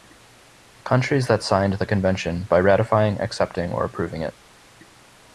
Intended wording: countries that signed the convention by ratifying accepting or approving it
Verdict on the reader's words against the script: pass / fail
pass